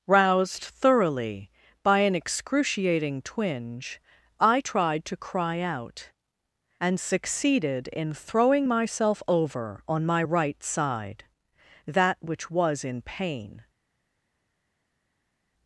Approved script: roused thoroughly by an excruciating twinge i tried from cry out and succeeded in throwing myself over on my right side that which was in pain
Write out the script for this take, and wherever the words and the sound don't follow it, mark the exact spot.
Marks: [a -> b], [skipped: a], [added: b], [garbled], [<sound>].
roused thoroughly by an excruciating twinge i tried [from -> to] cry out and succeeded in throwing myself over on my right side that which was in pain